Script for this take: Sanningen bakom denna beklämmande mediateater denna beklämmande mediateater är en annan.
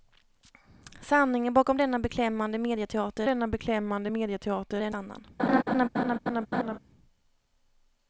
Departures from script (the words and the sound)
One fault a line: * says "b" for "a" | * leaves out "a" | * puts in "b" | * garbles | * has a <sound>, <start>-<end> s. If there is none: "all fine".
* has a laugh, 5.4-6.8 s